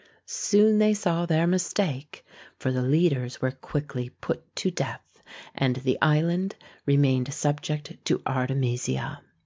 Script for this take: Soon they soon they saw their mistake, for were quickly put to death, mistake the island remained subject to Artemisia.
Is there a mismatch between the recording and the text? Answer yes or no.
yes